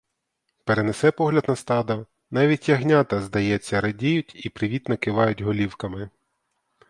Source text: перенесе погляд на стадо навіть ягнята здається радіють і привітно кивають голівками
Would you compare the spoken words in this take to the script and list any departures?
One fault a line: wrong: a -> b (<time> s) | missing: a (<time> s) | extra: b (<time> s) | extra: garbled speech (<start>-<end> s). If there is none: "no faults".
no faults